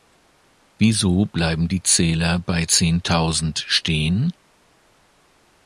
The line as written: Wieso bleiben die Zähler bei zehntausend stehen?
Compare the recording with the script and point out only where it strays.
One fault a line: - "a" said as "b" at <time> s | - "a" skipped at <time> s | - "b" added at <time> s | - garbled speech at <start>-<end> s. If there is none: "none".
none